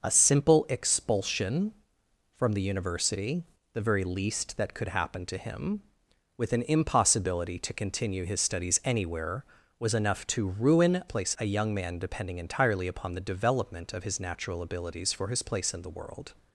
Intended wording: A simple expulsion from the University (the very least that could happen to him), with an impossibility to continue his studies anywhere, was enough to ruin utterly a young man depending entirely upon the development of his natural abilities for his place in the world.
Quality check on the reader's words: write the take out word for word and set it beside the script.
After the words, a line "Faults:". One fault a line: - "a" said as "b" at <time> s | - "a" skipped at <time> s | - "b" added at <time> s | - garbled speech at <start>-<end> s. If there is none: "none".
A simple expulsion from the University (the very least that could happen to him), with an impossibility to continue his studies anywhere, was enough to ruin place a young man depending entirely upon the development of his natural abilities for his place in the world.
Faults:
- "utterly" said as "place" at 11.1 s